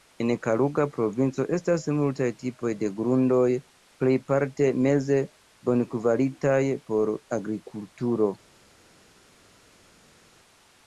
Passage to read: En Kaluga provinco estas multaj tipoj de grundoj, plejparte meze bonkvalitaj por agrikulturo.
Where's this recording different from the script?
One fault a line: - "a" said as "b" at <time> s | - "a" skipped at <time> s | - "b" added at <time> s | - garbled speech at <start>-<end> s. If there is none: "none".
none